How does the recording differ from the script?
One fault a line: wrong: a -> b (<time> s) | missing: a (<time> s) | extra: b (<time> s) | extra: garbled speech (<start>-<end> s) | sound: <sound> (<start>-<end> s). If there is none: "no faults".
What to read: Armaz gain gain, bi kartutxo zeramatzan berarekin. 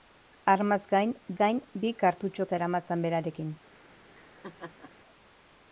sound: laugh (4.1-4.9 s)